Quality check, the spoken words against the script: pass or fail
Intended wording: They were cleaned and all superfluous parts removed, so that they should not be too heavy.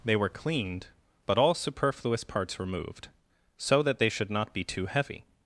fail